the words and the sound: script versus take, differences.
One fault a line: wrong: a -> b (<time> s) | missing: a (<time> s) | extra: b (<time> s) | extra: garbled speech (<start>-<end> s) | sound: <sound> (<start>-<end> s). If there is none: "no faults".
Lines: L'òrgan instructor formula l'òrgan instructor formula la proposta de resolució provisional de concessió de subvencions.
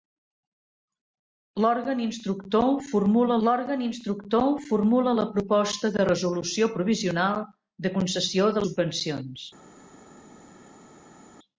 no faults